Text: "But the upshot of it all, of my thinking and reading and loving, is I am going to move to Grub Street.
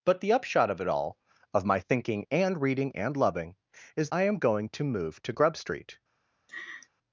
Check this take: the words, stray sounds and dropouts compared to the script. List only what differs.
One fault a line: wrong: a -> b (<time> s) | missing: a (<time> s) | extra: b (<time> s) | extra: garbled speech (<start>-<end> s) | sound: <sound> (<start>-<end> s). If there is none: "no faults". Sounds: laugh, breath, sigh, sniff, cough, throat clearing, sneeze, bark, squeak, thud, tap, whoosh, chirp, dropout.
sound: laugh (6.5-6.9 s)